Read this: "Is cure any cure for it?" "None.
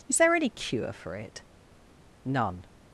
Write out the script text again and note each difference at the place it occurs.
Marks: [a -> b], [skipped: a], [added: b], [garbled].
"Is [cure -> there] any cure for it?" "None.